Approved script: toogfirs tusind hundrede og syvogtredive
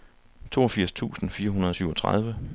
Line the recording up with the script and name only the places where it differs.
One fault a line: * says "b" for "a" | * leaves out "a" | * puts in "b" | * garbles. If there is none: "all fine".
* puts in "fire"